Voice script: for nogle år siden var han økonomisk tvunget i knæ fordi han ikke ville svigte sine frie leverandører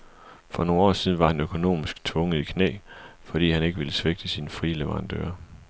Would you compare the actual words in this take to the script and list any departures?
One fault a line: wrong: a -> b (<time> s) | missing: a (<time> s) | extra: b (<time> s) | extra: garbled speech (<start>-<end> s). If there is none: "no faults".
no faults